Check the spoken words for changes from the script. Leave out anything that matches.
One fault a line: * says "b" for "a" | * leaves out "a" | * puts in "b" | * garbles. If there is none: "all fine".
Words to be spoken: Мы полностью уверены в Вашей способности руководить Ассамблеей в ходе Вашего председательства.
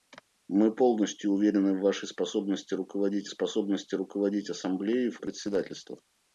* puts in "способности руководить"
* leaves out "ходе Вашего"